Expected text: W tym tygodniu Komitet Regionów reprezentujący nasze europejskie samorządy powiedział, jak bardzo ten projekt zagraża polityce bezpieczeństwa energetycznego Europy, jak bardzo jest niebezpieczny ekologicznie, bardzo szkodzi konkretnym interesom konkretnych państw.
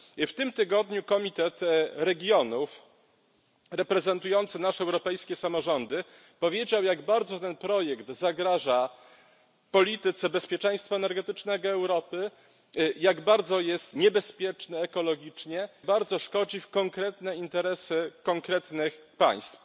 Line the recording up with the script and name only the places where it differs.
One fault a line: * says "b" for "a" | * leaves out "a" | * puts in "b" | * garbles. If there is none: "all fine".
all fine